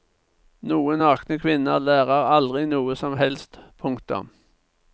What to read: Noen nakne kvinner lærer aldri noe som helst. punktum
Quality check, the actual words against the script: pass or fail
pass